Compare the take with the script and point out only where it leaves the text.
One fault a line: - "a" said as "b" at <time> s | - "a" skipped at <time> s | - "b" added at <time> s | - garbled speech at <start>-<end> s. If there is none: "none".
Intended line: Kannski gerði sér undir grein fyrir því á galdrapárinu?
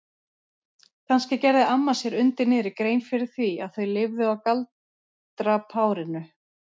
- "amma" added at 1.7 s
- "niðri" added at 2.5 s
- "að þau lifðu" added at 3.7 s